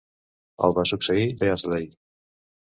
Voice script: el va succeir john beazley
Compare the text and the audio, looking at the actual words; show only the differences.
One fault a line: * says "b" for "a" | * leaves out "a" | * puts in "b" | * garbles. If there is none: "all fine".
* leaves out "john"